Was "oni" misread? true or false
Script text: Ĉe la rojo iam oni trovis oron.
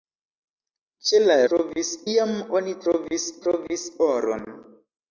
false